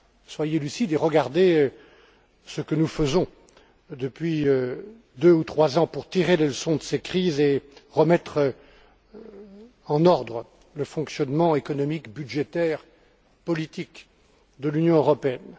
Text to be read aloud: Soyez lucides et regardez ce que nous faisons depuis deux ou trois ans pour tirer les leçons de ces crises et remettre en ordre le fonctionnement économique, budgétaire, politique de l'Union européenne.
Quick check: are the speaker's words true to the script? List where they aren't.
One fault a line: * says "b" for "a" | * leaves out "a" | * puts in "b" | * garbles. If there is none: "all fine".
all fine